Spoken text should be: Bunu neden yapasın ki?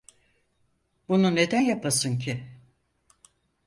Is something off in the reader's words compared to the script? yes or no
no